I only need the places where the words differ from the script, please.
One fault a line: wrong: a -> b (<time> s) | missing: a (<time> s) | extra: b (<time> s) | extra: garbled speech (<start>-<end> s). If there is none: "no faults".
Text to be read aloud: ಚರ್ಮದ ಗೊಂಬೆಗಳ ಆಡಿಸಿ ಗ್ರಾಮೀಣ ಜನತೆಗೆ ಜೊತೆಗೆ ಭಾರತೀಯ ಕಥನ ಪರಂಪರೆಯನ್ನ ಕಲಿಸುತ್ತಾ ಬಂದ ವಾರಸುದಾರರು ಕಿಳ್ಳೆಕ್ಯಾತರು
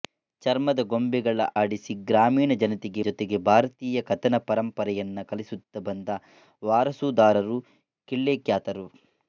no faults